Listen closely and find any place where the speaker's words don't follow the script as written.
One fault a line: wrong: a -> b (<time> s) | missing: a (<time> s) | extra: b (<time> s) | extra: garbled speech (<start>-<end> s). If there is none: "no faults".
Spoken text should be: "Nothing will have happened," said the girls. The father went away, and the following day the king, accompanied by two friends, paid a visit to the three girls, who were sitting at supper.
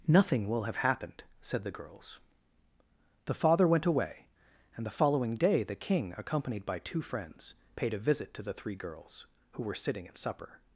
no faults